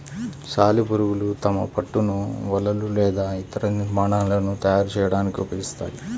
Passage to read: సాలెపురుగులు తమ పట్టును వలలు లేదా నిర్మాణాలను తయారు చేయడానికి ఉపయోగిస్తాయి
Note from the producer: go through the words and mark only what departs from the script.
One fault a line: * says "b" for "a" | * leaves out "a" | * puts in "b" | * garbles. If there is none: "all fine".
* puts in "ఇతర"